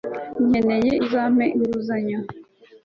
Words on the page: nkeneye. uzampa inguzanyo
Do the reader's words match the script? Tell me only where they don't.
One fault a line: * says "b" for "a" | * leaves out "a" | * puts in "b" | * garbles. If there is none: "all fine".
all fine